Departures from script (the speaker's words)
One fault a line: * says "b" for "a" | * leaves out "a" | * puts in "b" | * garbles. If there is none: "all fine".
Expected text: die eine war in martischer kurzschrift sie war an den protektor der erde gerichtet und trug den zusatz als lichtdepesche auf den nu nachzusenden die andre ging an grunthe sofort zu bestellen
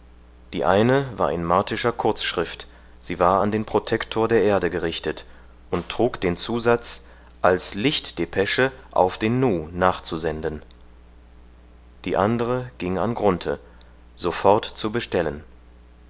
all fine